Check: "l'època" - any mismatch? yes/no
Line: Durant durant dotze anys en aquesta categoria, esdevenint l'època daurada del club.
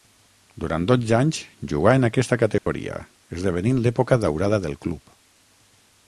no